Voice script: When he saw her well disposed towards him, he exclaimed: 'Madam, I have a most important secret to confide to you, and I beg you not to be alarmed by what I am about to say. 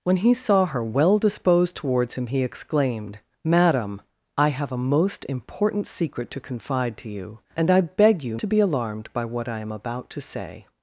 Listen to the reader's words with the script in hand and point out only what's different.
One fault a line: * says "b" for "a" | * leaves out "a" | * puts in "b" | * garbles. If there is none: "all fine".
* leaves out "not"